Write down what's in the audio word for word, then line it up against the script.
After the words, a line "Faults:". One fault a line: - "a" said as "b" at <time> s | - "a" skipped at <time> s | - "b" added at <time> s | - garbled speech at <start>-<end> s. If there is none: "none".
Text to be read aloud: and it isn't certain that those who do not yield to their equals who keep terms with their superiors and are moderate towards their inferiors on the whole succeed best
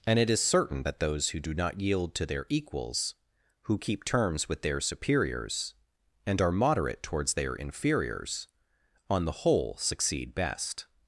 and it is certain that those who do not yield to their equals who keep terms with their superiors and are moderate towards their inferiors on the whole succeed best
Faults:
- "isn't" said as "is" at 0.3 s